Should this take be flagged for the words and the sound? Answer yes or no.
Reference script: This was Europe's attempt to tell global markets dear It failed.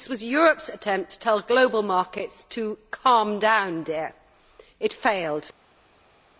yes